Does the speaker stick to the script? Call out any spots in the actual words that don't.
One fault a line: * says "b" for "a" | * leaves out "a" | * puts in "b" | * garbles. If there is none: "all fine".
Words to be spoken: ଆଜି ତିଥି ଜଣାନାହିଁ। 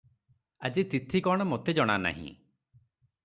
* puts in "କଣ ମୋତେ"